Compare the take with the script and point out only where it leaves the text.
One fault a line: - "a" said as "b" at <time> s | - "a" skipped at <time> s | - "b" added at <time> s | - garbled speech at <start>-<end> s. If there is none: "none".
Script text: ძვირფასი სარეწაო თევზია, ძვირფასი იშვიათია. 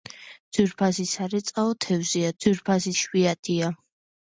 none